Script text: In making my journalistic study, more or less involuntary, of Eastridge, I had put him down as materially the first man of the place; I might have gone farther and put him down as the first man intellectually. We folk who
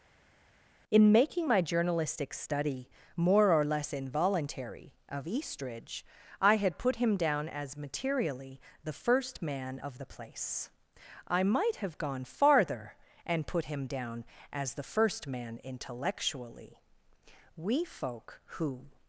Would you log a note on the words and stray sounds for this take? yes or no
no